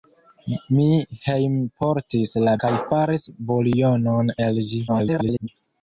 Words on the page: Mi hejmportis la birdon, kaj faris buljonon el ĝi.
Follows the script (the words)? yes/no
no